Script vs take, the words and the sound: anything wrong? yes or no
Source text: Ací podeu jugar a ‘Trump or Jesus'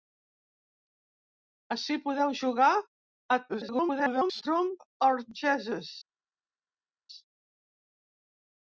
yes